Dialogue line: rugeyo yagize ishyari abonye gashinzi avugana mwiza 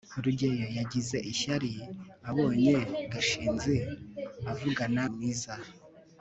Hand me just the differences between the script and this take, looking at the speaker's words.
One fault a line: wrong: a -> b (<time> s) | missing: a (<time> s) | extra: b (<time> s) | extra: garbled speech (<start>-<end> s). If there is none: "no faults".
no faults